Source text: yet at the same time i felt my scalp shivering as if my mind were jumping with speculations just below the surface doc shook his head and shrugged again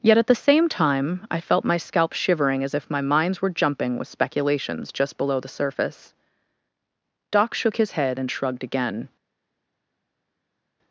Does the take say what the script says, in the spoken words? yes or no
no